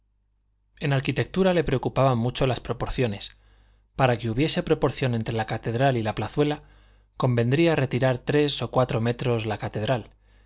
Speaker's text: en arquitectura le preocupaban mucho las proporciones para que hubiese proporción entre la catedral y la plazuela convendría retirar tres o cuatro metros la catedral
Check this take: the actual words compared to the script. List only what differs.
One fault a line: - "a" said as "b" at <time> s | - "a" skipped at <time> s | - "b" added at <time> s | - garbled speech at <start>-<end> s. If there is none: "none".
none